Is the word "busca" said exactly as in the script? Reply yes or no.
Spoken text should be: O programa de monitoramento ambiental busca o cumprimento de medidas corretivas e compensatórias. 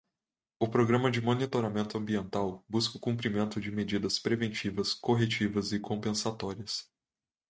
yes